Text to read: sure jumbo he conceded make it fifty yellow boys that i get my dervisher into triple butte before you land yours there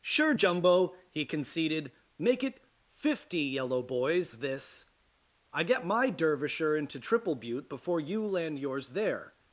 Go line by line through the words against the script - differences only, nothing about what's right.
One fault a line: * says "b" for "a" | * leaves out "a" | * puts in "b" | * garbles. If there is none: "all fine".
* says "this" for "that"